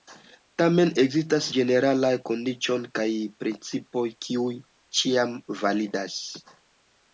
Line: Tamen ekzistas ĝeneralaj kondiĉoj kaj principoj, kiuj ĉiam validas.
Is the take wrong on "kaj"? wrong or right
right